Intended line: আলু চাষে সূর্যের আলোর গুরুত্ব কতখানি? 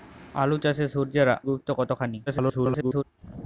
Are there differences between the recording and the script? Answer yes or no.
yes